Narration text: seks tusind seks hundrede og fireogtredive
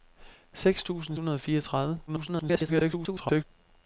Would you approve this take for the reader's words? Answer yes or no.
no